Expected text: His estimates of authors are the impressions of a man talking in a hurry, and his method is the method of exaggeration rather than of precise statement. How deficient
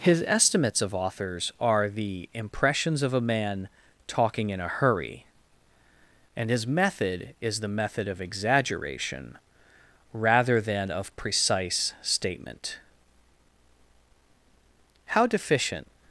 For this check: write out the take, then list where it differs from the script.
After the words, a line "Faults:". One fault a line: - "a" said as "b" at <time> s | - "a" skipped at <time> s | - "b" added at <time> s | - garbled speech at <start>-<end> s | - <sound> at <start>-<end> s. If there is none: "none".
His estimates of authors are the impressions of a man talking in a hurry, and his method is the method of exaggeration rather than of precise statement. How deficient
Faults:
none